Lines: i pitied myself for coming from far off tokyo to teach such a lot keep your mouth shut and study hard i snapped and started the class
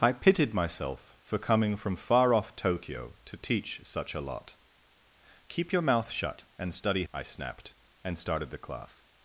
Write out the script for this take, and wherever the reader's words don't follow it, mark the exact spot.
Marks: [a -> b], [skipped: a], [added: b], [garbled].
i pitied myself for coming from far off tokyo to teach such a lot keep your mouth shut and study [skipped: hard] i snapped and started the class